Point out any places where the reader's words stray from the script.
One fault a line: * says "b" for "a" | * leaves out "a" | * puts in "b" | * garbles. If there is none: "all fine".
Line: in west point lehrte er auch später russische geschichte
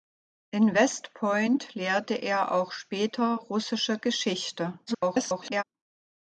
* garbles